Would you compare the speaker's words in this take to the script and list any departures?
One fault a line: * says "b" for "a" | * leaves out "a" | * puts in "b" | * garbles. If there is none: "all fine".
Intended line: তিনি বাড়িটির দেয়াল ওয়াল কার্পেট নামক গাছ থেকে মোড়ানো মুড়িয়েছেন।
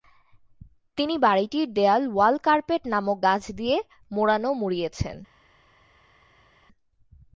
* says "দিয়ে" for "থেকে"